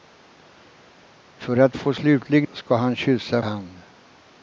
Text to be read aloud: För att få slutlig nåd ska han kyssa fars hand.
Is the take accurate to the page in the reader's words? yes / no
no